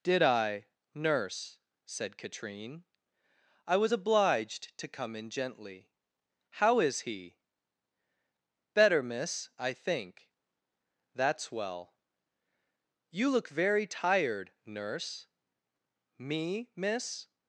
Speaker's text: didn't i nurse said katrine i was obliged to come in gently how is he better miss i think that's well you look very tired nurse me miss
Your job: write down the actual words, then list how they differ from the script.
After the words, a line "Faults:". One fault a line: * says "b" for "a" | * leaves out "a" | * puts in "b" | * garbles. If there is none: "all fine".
did i nurse said katrine i was obliged to come in gently how is he better miss i think that's well you look very tired nurse me miss
Faults:
* says "did" for "didn't"